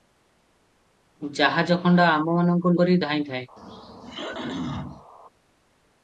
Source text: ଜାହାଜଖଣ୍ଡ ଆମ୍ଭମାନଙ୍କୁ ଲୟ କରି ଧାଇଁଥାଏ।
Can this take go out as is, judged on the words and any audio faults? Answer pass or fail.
fail